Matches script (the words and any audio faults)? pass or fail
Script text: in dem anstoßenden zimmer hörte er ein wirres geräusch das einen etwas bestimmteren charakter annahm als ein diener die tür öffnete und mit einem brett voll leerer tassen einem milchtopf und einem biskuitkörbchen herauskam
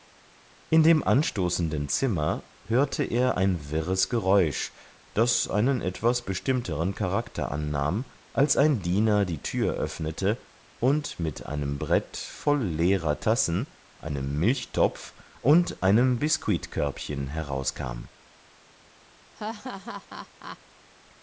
fail